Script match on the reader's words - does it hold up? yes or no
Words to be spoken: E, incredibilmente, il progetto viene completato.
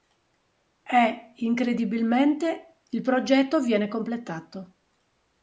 yes